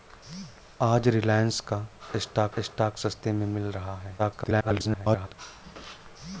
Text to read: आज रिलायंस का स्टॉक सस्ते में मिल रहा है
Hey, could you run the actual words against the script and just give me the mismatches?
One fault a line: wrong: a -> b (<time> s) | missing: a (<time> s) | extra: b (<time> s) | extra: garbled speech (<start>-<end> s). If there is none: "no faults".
extra: स्टॉक (2.6 s)
extra: garbled speech (4.2-5.3 s)